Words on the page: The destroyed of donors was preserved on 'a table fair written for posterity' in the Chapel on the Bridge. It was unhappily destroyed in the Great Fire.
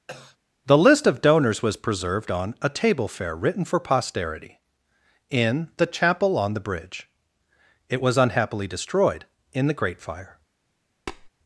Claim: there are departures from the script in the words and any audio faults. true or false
true